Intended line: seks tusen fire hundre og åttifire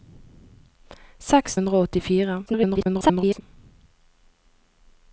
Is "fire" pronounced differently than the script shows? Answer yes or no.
yes